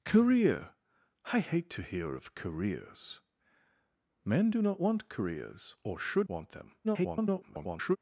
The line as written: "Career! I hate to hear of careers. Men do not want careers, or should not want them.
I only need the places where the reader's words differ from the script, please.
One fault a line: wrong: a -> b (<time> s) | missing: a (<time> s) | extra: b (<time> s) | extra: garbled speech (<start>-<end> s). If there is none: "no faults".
missing: not (6.3 s)
extra: garbled speech (6.8-8.0 s)